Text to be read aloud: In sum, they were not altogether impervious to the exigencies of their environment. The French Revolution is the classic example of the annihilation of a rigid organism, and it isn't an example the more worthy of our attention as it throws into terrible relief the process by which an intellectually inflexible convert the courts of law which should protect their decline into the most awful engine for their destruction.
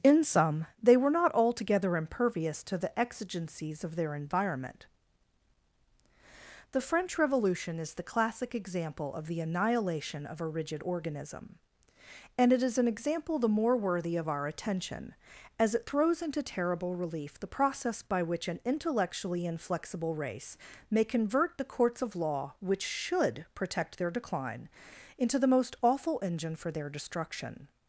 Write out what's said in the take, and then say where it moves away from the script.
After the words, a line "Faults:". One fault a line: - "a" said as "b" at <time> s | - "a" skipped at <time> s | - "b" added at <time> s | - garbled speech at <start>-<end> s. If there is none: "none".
In sum, they were not altogether impervious to the exigencies of their environment. The French Revolution is the classic example of the annihilation of a rigid organism, and it is an example the more worthy of our attention as it throws into terrible relief the process by which an intellectually inflexible race may convert the courts of law which should protect their decline into the most awful engine for their destruction.
Faults:
- "isn't" said as "is" at 12.6 s
- "race may" added at 20.1 s